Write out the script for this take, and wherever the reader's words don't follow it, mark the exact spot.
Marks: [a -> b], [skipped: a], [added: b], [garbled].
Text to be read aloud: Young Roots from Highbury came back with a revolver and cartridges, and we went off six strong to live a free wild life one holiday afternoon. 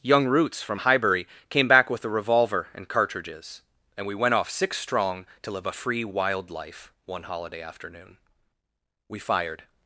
Young Roots from Highbury came back with a revolver and cartridges, and we went off six strong to live a free wild life one holiday afternoon. [added: We fired]